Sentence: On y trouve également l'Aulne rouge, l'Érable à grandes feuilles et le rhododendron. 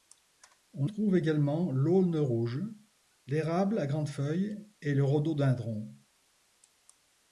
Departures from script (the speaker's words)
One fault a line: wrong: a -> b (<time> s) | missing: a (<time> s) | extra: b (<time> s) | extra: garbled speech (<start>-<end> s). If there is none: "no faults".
missing: y (0.9 s)